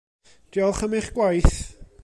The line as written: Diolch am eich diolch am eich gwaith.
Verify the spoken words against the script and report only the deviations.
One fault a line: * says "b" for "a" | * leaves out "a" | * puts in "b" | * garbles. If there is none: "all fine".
* leaves out "diolch am eich"